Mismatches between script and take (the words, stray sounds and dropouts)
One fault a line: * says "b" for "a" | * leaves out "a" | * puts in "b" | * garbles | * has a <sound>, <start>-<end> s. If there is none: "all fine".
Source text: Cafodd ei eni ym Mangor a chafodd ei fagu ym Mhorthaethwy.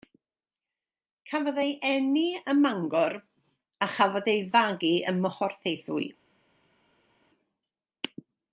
all fine